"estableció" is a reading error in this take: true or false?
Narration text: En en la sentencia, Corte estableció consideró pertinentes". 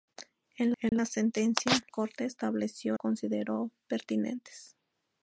false